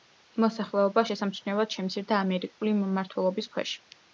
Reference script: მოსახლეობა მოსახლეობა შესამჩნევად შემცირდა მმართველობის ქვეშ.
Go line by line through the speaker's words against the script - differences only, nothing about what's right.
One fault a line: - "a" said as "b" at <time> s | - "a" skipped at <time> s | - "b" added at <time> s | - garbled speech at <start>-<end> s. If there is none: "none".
- "მოსახლეობა" skipped at 1.0 s
- "ამერიკული" added at 2.3 s